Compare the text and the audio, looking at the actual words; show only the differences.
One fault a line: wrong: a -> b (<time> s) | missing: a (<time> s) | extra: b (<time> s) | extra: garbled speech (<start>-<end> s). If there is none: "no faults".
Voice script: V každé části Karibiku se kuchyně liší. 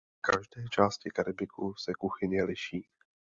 no faults